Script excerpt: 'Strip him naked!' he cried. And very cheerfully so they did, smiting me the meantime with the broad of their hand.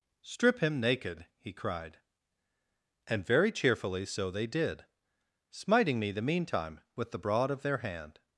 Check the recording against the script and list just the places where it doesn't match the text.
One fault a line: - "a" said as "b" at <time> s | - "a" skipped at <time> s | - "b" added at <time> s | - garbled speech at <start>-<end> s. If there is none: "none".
none